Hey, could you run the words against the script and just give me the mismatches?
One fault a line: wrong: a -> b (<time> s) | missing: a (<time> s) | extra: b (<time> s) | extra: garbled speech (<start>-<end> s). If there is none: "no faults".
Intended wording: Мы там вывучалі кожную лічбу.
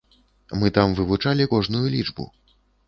no faults